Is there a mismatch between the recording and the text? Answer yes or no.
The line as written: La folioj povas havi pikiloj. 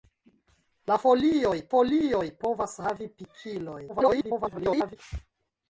yes